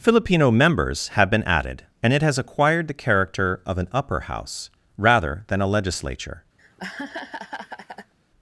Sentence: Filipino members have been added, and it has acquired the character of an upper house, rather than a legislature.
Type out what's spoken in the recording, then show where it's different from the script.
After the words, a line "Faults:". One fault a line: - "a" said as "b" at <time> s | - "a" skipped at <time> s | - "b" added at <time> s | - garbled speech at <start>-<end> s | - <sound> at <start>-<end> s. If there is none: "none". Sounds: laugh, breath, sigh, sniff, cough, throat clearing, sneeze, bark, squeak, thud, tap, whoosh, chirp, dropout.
Filipino members have been added, and it has acquired the character of an upper house, rather than a legislature.
Faults:
- laugh at 6.6-8.1 s